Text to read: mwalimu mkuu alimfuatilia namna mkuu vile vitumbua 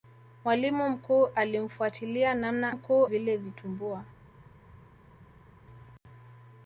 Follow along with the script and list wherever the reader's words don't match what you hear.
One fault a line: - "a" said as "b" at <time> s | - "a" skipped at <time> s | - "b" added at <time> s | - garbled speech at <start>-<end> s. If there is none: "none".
none